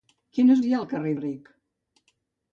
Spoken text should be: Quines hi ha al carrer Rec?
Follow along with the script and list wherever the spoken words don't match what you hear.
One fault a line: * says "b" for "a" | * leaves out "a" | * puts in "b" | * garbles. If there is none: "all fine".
all fine